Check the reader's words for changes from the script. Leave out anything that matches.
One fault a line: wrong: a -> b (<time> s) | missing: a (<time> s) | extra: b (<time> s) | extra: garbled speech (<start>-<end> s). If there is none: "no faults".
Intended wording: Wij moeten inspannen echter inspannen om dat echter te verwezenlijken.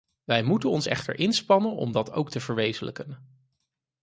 wrong: inspannen -> ons (0.7 s)
wrong: echter -> ook (2.1 s)